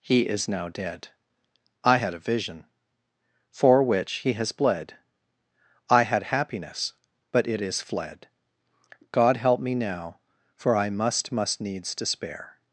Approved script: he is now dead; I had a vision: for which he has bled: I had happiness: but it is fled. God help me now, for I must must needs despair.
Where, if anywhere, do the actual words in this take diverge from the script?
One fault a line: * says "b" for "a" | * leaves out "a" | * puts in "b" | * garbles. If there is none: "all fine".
all fine